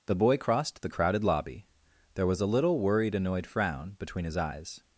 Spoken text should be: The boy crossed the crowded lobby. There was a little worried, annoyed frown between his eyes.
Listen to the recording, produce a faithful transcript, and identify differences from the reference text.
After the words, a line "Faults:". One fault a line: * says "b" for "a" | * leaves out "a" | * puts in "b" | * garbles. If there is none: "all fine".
The boy crossed the crowded lobby. There was a little worried, annoyed frown between his eyes.
Faults:
all fine